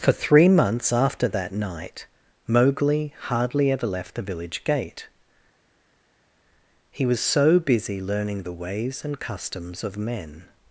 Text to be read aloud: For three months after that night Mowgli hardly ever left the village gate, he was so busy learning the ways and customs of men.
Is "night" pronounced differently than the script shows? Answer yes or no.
no